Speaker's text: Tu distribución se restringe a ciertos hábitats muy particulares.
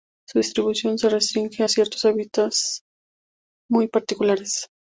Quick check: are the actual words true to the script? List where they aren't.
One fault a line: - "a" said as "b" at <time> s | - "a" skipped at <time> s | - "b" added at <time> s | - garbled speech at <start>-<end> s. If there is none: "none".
- "Tu" said as "Su" at 0.3 s